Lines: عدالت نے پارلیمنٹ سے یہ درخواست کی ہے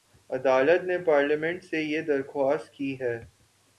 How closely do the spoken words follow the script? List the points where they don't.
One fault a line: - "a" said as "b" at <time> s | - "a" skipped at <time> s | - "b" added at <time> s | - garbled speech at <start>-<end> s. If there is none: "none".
none